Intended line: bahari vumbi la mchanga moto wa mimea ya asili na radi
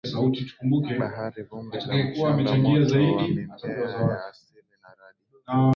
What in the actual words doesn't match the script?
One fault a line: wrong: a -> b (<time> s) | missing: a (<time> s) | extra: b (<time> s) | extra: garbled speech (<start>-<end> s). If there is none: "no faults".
no faults